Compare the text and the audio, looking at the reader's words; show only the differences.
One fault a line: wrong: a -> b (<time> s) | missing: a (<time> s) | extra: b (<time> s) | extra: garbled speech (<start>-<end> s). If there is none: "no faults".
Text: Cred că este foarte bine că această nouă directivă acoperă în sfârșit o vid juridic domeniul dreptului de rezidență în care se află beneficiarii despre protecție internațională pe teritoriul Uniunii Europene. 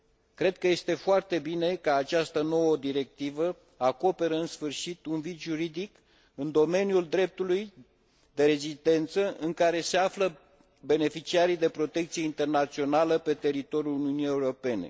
wrong: o -> un (5.0 s)
extra: în (6.3 s)
wrong: despre -> de (11.6 s)